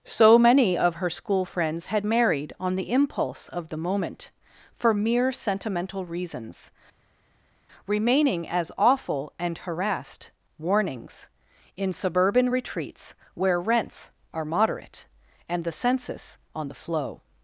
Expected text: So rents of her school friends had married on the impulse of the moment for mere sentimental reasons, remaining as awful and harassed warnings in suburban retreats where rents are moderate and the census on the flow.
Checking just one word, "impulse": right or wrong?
right